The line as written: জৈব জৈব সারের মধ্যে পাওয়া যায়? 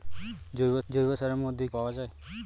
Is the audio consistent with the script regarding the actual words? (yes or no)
yes